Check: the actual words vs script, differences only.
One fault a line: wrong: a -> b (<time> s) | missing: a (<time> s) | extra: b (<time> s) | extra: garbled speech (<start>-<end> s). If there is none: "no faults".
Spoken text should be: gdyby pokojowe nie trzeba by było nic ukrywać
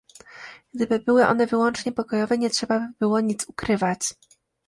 extra: były one wyłącznie (1.0 s)